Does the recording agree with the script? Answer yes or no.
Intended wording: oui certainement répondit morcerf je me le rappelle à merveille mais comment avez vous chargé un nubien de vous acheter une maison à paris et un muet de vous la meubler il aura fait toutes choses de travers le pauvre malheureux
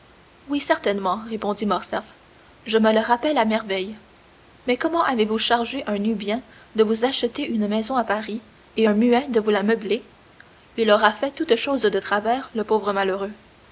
yes